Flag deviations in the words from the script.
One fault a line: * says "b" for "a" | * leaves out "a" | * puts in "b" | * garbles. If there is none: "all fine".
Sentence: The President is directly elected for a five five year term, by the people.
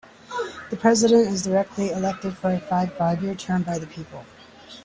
all fine